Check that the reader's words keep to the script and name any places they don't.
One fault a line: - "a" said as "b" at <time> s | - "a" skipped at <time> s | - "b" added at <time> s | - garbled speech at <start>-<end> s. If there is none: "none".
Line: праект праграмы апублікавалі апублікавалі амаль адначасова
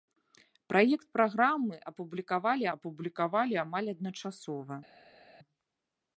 none